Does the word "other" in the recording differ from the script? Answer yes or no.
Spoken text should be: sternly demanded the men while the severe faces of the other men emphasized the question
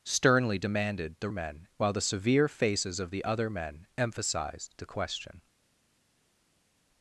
no